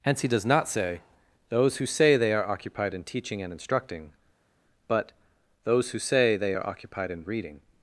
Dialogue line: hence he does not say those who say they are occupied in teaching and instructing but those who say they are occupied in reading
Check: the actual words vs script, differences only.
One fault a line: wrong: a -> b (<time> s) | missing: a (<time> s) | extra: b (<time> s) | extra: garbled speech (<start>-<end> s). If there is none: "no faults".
no faults